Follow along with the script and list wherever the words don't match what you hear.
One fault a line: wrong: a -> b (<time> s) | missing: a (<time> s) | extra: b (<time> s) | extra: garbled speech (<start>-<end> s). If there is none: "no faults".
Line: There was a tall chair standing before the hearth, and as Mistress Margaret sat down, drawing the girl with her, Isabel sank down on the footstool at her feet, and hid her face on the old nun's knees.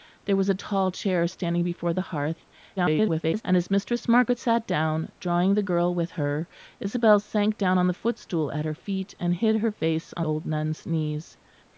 extra: garbled speech (2.8-3.4 s)
missing: the (10.3 s)